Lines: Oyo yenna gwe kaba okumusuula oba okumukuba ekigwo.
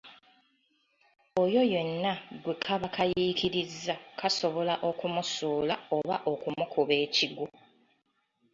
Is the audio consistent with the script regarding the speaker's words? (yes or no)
no